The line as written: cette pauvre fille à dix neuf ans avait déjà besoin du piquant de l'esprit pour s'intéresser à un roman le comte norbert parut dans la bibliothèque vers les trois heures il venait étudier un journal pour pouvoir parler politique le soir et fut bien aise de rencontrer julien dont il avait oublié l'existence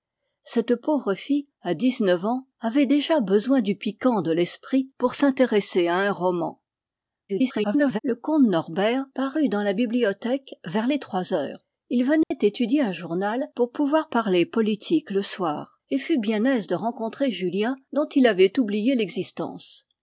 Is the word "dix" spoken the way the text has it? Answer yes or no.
yes